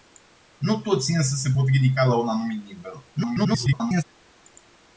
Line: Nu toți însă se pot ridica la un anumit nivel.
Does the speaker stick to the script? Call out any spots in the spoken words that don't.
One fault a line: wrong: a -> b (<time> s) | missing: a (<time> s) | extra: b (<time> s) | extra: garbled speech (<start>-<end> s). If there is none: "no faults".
extra: garbled speech (3.1-4.0 s)